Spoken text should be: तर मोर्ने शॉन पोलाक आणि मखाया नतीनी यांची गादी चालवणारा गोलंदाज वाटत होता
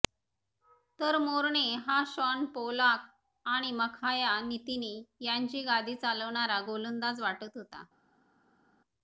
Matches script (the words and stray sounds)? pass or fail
fail